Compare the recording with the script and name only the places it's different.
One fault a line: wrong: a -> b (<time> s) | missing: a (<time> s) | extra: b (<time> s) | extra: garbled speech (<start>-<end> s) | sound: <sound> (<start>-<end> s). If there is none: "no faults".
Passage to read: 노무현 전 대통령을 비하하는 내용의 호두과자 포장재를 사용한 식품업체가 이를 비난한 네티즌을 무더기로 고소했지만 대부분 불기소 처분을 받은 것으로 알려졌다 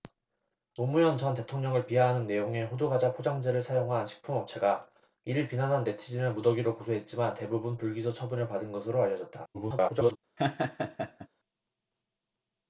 extra: garbled speech (9.5-10.2 s)
sound: laugh (10.4-11.3 s)